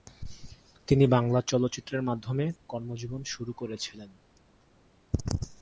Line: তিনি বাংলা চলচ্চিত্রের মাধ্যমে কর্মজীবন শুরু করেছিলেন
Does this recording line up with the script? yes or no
yes